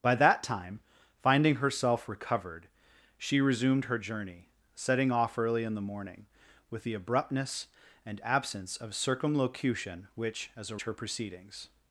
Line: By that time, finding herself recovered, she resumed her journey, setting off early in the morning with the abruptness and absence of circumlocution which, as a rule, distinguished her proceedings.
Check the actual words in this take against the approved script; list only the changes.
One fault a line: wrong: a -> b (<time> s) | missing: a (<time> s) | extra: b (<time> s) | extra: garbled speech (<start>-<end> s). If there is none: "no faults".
missing: rule distinguished (10.8 s)